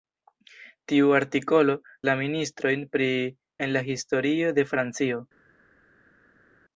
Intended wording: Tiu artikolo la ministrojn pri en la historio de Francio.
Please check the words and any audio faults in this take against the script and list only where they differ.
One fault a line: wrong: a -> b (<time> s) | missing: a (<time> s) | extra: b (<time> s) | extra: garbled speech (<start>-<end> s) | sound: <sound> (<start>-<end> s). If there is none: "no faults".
no faults